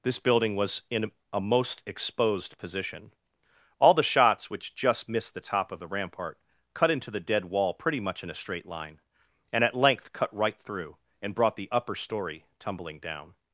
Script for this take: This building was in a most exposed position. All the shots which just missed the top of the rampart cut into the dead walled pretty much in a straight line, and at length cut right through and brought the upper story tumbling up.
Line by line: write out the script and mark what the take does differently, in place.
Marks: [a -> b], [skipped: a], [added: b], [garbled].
This building was in a most exposed position. All the shots which just missed the top of the rampart cut into the dead [walled -> wall] pretty much in a straight line, and at length cut right through and brought the upper story tumbling [up. -> down]